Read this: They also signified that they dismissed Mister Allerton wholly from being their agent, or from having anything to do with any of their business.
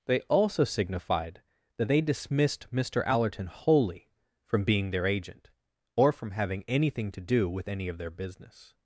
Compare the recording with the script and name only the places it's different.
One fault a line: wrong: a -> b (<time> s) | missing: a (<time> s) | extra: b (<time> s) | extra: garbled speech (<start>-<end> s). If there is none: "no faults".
no faults